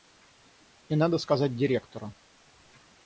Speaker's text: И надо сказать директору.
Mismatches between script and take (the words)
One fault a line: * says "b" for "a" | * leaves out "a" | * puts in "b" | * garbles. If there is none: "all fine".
all fine